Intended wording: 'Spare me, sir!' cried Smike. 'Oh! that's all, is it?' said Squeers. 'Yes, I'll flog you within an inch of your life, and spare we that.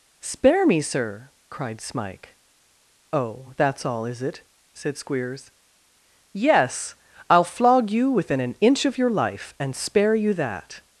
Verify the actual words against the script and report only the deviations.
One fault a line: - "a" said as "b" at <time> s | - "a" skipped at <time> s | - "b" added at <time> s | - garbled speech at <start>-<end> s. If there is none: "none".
- "we" said as "you" at 10.2 s